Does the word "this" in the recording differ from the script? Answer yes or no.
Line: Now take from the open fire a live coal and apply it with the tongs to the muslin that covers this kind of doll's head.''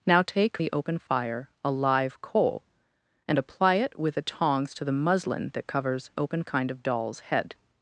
yes